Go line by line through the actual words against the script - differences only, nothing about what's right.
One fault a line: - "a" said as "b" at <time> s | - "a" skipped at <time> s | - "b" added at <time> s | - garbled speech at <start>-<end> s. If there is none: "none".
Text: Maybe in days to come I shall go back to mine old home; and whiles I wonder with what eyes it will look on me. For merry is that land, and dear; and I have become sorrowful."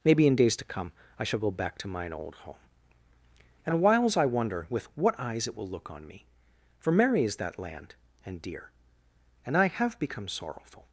none